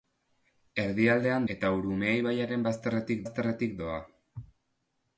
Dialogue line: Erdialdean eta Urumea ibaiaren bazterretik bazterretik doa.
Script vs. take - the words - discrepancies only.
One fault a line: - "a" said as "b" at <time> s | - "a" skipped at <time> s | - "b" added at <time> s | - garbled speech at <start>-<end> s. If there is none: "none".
none